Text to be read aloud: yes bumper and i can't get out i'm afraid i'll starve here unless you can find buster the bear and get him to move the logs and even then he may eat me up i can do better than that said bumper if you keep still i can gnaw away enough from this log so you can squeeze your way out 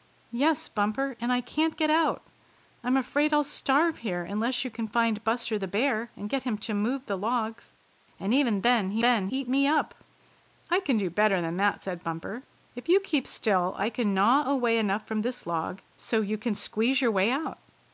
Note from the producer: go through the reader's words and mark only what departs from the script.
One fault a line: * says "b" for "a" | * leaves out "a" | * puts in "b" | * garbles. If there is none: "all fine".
* says "then" for "may"